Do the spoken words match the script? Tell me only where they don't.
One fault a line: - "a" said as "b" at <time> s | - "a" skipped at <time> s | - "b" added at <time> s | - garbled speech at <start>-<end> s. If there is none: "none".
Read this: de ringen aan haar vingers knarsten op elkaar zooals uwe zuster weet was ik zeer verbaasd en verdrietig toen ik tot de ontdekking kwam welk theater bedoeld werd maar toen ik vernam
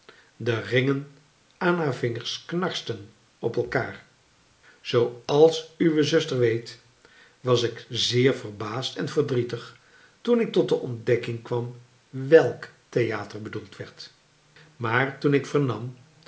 none